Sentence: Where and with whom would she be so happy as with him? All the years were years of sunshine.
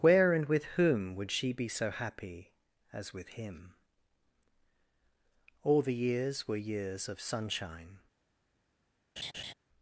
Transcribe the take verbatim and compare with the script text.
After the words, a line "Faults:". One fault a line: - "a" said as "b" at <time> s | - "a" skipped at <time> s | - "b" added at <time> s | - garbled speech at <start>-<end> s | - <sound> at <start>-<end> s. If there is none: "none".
Where and with whom would she be so happy as with him? All the years were years of sunshine.
Faults:
- laugh at 9.2-9.5 s